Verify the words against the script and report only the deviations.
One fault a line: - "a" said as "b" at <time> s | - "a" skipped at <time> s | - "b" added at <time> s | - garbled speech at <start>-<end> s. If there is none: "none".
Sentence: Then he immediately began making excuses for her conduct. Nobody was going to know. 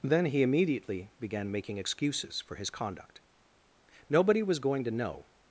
- "her" said as "his" at 2.5 s